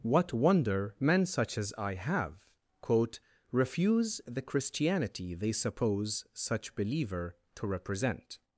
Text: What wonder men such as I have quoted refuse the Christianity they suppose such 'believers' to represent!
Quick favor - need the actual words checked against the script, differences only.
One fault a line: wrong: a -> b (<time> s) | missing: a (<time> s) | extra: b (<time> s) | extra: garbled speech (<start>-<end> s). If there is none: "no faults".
wrong: quoted -> quote (2.8 s)
wrong: believers -> believer (6.8 s)